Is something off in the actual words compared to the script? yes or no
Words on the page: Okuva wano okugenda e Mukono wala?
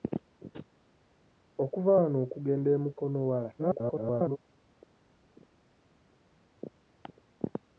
yes